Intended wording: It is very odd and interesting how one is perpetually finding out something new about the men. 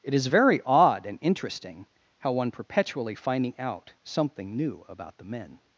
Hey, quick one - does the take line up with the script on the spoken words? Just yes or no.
no